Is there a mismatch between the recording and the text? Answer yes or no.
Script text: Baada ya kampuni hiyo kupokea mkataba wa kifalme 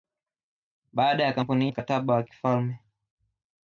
yes